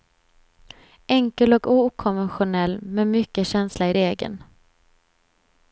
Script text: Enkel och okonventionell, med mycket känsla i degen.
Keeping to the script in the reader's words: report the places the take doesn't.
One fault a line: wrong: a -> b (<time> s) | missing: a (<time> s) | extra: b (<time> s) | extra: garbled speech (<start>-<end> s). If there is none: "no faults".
no faults